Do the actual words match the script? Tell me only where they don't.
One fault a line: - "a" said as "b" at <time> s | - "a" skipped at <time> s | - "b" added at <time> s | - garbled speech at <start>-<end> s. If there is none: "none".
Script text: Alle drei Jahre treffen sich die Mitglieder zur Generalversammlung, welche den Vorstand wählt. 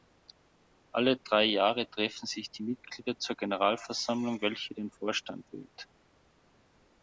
none